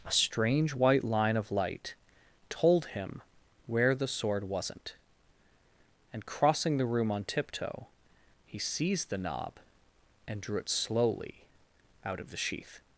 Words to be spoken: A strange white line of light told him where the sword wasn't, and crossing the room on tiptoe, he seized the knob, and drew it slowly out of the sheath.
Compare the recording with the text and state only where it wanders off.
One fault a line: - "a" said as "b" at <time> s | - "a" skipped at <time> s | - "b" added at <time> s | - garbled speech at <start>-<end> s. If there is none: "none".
none